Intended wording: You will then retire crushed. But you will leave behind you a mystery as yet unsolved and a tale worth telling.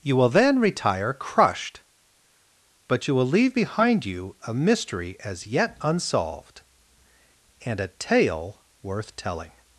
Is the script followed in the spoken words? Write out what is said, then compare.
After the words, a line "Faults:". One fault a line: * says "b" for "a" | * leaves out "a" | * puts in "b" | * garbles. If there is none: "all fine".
You will then retire crushed. But you will leave behind you a mystery as yet unsolved and a tale worth telling.
Faults:
all fine